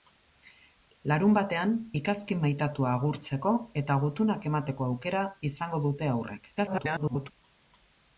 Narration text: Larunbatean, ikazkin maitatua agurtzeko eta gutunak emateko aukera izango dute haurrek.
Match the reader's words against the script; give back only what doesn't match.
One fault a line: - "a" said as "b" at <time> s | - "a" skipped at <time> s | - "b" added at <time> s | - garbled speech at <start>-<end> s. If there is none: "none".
- garbled speech at 6.6-7.3 s